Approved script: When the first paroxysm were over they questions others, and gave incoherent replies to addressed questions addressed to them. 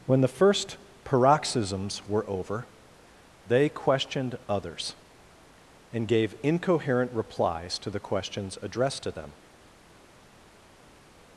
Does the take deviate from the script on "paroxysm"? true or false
true